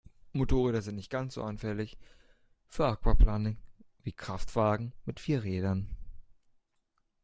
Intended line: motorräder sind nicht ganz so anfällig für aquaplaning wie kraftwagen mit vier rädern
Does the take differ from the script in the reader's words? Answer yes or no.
no